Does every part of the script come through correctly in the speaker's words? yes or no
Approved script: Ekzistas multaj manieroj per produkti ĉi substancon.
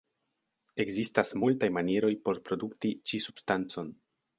no